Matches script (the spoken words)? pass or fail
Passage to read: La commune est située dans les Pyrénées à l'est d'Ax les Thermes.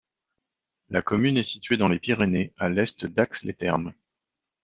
pass